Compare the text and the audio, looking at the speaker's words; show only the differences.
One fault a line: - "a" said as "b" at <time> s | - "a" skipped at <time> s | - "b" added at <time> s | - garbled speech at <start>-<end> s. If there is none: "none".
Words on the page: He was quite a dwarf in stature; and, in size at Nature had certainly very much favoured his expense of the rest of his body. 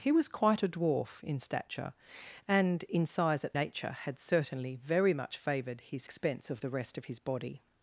none